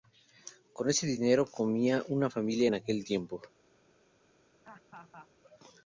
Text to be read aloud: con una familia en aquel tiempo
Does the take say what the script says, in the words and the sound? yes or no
no